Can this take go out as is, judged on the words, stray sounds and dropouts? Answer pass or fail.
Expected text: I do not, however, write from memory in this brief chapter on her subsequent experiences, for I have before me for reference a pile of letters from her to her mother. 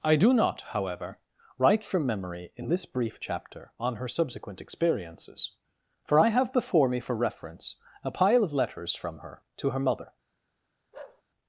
fail